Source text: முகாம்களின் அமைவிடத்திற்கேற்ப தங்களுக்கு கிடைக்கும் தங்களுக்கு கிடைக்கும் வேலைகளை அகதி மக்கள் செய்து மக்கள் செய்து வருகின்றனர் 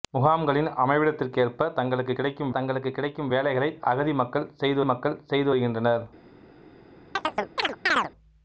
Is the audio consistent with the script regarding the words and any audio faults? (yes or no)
no